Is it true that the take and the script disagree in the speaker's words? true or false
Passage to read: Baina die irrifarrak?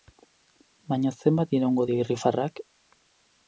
true